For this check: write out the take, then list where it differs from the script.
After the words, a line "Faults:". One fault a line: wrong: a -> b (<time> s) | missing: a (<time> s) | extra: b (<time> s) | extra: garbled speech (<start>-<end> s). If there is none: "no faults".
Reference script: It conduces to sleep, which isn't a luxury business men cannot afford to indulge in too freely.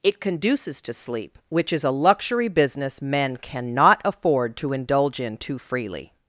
It conduces to sleep, which is a luxury business men cannot afford to indulge in too freely.
Faults:
wrong: isn't -> is (1.7 s)